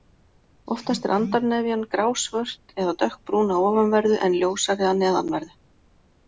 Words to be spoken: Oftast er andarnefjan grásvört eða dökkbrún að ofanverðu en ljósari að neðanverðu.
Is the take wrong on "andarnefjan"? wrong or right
right